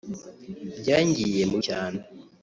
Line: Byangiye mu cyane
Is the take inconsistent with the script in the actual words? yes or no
no